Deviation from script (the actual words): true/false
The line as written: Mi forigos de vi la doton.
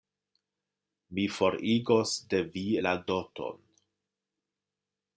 false